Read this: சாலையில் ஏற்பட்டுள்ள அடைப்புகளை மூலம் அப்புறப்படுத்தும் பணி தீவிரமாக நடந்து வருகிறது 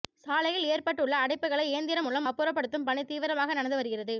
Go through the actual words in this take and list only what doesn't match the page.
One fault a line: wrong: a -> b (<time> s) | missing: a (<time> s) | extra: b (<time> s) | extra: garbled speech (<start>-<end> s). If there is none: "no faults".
extra: இயந்திரம் (1.7 s)